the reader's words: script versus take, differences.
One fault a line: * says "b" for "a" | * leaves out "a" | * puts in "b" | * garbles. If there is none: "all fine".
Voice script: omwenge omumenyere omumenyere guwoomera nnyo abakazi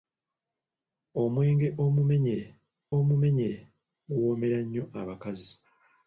all fine